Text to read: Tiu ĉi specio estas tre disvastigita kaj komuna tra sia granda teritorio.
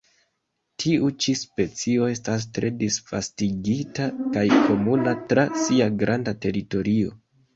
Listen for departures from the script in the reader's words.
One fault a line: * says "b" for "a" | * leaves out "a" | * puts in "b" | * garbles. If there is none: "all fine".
all fine